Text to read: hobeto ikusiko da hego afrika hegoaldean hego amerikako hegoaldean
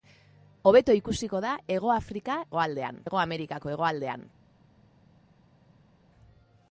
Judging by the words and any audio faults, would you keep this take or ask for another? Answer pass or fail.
pass